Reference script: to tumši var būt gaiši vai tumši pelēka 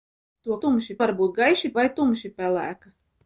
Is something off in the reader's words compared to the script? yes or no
no